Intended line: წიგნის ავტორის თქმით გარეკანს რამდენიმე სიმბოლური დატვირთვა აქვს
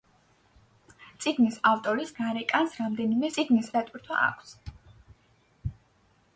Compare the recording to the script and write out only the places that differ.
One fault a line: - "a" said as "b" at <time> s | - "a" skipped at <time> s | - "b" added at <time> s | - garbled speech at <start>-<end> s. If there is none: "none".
- "თქმით" skipped at 2.1 s
- "სიმბოლური" said as "წიგნის" at 3.4 s